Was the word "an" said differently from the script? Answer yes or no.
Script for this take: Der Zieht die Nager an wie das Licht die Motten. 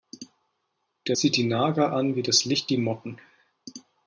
no